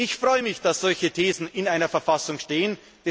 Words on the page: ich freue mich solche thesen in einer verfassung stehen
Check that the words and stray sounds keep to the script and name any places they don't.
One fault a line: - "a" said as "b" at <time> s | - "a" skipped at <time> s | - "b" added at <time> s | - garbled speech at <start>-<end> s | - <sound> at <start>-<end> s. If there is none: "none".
- "dass" added at 0.6 s